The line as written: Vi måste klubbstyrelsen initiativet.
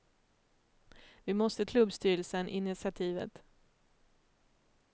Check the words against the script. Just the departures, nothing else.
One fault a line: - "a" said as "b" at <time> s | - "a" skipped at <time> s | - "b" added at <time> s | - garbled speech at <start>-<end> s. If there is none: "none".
none